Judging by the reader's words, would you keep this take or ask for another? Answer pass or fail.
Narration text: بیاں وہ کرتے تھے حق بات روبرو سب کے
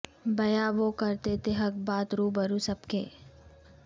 pass